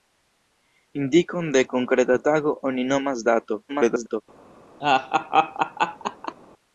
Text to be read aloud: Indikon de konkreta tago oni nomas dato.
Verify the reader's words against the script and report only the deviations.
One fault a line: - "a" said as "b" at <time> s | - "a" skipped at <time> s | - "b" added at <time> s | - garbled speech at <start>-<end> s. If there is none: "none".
- garbled speech at 3.7-4.2 s